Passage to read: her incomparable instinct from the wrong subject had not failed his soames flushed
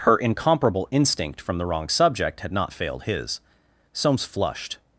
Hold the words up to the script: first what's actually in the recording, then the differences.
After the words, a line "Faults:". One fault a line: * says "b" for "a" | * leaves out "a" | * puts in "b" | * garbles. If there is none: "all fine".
her incomparable instinct from the wrong subject had not failed his soames flushed
Faults:
all fine